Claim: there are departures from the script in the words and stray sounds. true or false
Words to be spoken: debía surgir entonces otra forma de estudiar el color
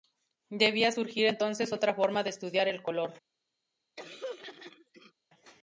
true